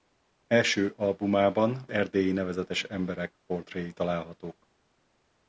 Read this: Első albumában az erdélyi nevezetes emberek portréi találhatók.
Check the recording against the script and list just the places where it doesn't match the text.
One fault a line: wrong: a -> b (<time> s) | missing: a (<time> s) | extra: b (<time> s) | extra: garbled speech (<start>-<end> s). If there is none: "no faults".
missing: az (1.9 s)